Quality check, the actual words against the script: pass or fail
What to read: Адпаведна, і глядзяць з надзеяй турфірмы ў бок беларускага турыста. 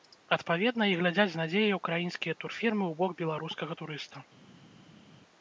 fail